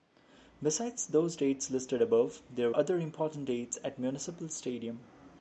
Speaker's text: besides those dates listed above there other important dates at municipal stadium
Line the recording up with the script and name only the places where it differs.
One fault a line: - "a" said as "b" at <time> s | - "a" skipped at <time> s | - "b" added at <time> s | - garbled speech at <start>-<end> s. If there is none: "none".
none